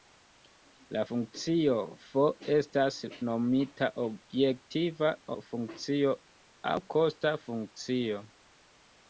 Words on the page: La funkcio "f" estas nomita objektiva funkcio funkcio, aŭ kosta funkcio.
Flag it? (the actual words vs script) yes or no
yes